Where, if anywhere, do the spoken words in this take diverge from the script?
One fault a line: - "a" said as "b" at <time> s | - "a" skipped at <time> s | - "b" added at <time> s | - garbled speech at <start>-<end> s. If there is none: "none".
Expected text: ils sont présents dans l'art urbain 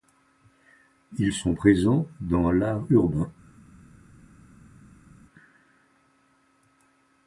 none